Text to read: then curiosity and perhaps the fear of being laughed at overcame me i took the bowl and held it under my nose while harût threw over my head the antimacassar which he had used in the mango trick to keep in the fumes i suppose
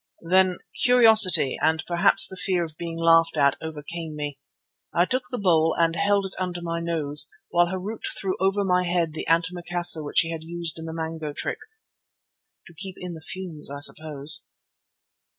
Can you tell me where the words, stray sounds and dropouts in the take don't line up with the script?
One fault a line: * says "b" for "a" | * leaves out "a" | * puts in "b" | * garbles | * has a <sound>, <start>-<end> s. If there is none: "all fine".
all fine